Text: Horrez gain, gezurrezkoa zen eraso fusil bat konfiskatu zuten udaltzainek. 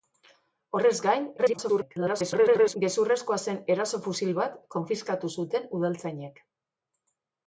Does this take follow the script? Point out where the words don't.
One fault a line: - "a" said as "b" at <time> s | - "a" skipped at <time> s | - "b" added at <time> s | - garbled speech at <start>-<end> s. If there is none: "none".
- garbled speech at 1.4-2.8 s